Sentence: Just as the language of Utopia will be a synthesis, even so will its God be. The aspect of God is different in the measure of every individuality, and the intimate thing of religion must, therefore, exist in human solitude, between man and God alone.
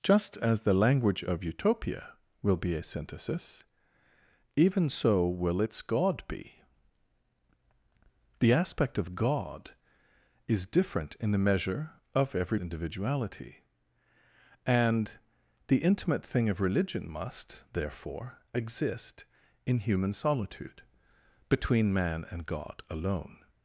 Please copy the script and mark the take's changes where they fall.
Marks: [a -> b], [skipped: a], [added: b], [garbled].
Just as the language of Utopia will be a synthesis, even so will its God be. The aspect of God is different in the measure of every individuality, and the intimate thing of religion must, therefore, exist in human solitude, between man and God alone.